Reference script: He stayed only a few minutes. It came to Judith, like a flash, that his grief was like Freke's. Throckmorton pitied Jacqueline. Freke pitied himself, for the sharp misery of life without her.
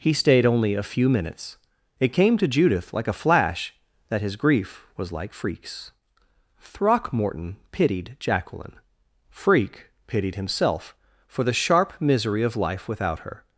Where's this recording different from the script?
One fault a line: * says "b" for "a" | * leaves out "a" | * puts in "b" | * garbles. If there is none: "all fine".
all fine